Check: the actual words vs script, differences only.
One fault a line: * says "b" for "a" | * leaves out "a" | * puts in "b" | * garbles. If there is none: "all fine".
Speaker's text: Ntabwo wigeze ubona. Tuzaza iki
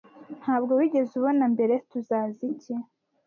* puts in "mbere"